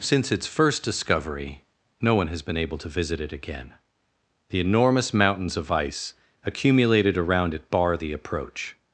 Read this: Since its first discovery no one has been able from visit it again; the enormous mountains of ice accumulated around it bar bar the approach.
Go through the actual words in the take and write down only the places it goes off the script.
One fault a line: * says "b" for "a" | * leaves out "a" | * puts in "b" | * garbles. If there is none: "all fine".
* says "to" for "from"
* leaves out "bar"